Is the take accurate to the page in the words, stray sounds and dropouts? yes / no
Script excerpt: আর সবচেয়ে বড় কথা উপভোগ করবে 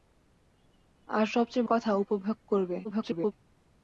no